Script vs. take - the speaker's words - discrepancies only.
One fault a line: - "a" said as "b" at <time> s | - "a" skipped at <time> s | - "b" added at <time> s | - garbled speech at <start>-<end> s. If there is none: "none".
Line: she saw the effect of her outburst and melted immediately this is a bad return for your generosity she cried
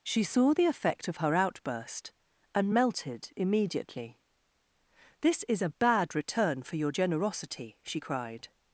none